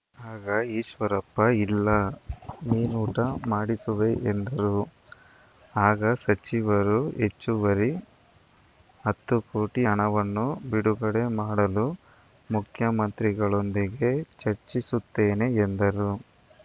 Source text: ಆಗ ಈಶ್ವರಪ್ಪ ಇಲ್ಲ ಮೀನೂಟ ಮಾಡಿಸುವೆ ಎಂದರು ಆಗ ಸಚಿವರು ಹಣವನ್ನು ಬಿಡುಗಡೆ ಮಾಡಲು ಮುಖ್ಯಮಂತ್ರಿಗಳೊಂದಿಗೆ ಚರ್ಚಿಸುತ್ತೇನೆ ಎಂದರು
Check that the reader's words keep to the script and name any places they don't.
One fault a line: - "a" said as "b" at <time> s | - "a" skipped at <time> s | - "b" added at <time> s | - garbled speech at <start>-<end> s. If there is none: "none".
- "ಹೆಚ್ಚುವರಿ ಹತ್ತು ಕೋಟಿ" added at 7.2 s